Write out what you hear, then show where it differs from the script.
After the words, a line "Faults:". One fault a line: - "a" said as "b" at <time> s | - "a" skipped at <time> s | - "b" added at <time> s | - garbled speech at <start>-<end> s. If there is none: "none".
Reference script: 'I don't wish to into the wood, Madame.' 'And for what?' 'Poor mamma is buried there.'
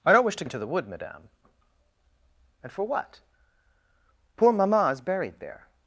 'I don't wish to into the wood, Madame.' 'And for what?' 'Poor mamma is buried there.'
Faults:
none